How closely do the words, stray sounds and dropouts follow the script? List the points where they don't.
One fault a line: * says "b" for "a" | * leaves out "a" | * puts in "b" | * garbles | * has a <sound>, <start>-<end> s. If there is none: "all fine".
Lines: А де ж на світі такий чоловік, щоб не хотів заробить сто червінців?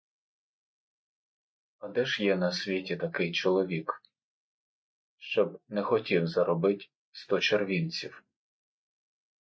* puts in "є"